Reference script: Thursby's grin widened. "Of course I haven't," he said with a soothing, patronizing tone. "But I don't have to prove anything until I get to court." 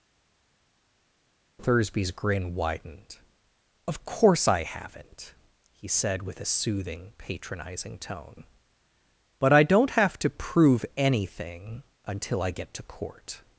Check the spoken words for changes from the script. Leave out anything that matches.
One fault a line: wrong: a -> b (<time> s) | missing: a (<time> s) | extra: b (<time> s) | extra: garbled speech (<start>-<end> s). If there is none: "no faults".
no faults